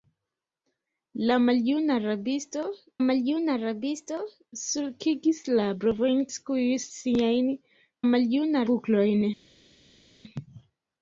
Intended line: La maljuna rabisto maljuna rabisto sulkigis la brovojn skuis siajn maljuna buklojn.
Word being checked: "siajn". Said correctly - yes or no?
yes